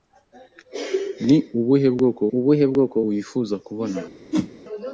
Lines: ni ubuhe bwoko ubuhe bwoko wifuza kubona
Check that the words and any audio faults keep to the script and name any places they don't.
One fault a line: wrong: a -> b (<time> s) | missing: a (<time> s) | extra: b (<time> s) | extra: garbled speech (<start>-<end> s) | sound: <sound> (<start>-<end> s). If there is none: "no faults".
sound: whoosh (4.3-4.5 s)